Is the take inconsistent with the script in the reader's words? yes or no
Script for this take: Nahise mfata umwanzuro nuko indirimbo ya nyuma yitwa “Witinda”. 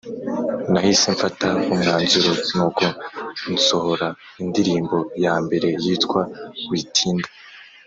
yes